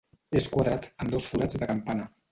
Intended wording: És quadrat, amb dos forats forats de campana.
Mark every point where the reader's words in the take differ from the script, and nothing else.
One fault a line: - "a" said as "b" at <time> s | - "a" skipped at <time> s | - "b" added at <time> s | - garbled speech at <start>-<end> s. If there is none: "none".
- "forats" skipped at 1.6 s